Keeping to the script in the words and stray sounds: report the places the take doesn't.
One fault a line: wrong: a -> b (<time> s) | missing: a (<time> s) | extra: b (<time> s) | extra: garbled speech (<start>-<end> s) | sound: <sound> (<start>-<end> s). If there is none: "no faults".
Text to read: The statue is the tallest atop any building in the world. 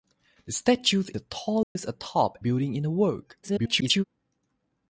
missing: is (1.0 s)
sound: dropout (1.6-1.8 s)
missing: any (2.4 s)
extra: garbled speech (3.4-4.0 s)